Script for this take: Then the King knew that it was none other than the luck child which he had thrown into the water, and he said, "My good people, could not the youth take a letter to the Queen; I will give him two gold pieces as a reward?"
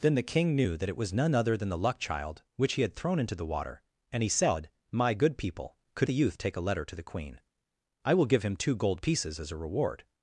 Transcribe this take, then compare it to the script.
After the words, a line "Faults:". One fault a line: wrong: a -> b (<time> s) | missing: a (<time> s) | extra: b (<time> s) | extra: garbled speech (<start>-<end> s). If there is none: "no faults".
Then the King knew that it was none other than the luck child which he had thrown into the water, and he said, "My good people, could the youth take a letter to the Queen; I will give him two gold pieces as a reward?"
Faults:
missing: not (6.1 s)